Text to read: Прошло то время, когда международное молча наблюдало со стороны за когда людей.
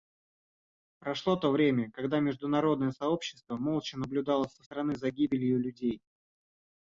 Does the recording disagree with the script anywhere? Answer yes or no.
yes